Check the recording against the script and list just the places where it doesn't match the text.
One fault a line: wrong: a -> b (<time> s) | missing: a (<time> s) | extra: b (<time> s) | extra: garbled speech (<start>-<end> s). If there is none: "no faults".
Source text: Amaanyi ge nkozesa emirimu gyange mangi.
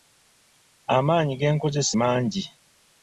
missing: emirimu gyange (1.9 s)